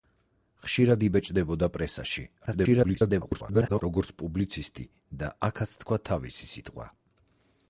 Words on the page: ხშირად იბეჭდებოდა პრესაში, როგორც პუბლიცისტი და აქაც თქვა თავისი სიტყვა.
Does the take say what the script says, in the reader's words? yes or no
no